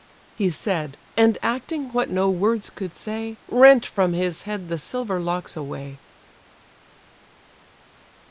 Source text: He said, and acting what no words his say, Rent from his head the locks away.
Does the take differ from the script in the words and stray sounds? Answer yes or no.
yes